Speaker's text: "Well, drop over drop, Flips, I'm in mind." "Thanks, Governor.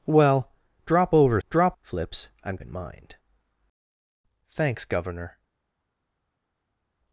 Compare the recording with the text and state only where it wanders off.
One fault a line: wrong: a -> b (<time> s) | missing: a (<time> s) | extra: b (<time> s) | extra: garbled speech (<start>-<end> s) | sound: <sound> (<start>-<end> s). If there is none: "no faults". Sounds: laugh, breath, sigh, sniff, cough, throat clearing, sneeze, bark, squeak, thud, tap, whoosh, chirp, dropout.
no faults